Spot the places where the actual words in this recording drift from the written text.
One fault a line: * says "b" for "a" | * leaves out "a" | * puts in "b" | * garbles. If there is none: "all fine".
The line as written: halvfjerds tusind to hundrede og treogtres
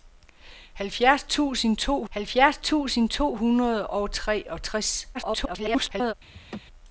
* puts in "halvfjerds tusind to"
* garbles